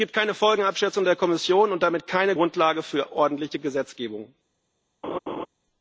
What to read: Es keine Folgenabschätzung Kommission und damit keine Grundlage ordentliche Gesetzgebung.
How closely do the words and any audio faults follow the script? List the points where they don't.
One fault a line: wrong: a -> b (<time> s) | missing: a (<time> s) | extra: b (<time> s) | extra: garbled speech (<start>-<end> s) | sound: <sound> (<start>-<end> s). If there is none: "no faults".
extra: gibt (0.1 s)
extra: der (1.0 s)
extra: für (2.8 s)
sound: laugh (5.0-5.5 s)